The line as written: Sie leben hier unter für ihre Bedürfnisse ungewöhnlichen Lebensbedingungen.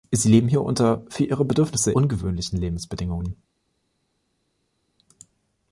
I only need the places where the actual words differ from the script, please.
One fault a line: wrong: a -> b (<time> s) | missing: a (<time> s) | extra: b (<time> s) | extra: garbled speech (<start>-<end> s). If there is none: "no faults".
no faults